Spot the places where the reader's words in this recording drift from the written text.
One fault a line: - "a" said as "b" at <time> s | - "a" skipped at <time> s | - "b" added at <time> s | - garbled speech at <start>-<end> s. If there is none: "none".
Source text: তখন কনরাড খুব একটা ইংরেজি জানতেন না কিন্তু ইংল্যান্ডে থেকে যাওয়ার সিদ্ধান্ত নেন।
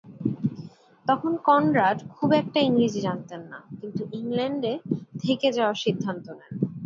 none